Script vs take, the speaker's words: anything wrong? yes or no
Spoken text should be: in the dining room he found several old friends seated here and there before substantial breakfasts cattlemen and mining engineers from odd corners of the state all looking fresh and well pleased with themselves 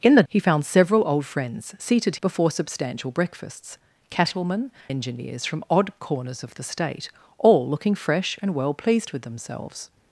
yes